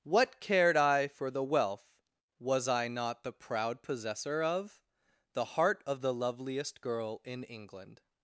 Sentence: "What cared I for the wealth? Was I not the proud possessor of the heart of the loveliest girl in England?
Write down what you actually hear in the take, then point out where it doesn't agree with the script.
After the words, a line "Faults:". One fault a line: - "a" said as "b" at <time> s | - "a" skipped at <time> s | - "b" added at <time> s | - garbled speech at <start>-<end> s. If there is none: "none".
"What cared I for the wealth? Was I not the proud possessor of the heart of the loveliest girl in England?
Faults:
none